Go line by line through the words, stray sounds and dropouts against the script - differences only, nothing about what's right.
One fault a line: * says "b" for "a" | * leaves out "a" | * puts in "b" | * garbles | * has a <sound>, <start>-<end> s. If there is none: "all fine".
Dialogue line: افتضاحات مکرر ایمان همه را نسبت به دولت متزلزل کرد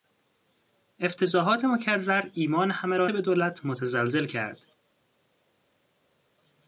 * leaves out "نسبت"